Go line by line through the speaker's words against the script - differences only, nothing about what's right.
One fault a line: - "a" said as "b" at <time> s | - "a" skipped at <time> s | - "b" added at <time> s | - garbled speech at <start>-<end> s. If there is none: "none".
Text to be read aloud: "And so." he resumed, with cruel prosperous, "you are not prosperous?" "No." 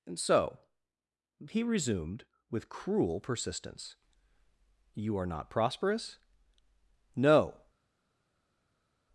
- "prosperous" said as "persistence" at 3.2 s